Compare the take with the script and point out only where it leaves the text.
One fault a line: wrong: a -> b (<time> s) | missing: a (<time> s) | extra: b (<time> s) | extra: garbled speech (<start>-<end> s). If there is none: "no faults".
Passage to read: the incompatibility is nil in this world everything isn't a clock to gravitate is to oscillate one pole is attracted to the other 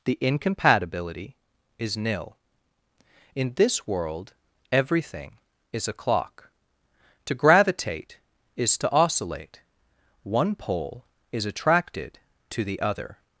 wrong: isn't -> is (5.7 s)